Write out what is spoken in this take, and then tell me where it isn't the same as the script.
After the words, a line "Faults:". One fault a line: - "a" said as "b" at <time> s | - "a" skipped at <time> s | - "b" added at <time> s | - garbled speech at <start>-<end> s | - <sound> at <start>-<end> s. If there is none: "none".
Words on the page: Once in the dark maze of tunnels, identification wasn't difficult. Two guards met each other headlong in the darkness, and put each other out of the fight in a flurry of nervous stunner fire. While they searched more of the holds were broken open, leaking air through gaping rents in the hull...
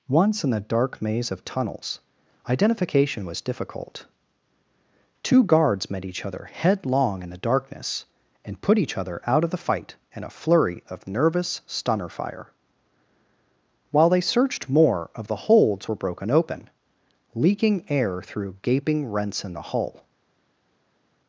Once in the dark maze of tunnels, identification was difficult. Two guards met each other headlong in the darkness, and put each other out of the fight in a flurry of nervous stunner fire. While they searched more of the holds were broken open, leaking air through gaping rents in the hull...
Faults:
- "wasn't" said as "was" at 3.3 s